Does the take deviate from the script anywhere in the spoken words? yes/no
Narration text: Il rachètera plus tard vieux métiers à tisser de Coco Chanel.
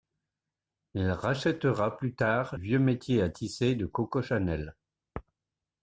no